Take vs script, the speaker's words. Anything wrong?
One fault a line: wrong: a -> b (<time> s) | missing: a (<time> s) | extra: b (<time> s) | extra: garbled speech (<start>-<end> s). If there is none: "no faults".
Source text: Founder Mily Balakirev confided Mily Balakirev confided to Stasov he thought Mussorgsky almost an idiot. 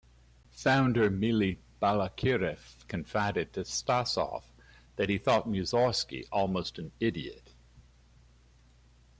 missing: Mily Balakirev confided (3.5 s)
extra: that (4.9 s)